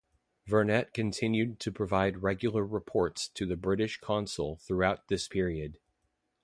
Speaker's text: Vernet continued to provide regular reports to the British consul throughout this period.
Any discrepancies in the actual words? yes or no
no